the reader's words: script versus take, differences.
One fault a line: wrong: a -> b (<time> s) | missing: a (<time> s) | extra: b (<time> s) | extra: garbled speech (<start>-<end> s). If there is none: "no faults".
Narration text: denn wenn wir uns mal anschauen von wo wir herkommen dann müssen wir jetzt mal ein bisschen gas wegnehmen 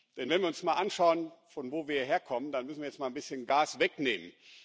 no faults